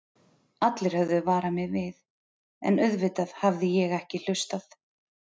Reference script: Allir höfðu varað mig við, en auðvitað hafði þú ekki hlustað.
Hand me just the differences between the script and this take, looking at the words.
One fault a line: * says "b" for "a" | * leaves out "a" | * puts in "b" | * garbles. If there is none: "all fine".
* says "ég" for "þú"